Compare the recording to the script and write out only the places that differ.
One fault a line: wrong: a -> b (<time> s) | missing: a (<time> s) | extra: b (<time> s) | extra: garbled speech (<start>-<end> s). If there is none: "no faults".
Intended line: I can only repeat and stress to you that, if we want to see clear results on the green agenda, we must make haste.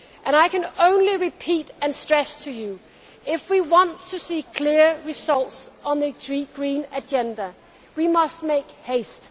no faults